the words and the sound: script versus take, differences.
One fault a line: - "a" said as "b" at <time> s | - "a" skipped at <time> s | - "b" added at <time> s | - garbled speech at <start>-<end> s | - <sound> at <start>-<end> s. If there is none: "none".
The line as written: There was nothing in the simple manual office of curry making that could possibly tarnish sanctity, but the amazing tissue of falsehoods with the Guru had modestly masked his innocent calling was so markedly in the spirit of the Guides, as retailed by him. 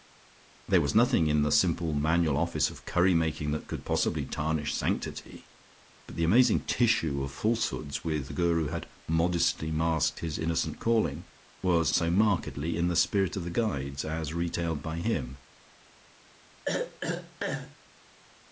- throat clearing at 16.6-17.8 s